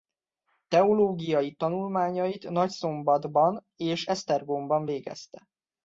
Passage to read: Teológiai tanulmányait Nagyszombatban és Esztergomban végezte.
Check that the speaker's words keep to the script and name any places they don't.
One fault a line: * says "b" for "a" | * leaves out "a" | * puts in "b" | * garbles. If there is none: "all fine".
all fine